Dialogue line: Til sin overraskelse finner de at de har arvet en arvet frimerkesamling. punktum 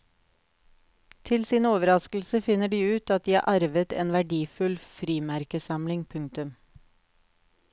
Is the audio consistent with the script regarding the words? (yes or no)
no